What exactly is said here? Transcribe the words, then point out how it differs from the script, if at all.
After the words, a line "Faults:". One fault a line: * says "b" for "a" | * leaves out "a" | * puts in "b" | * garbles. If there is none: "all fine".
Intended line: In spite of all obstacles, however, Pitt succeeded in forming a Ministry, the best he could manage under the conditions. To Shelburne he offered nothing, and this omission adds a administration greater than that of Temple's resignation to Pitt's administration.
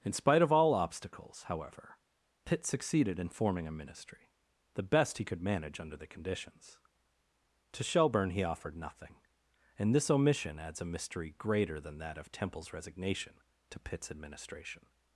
In spite of all obstacles, however, Pitt succeeded in forming a Ministry, the best he could manage under the conditions. To Shelburne he offered nothing, and this omission adds a mystery greater than that of Temple's resignation to Pitt's administration.
Faults:
* says "mystery" for "administration"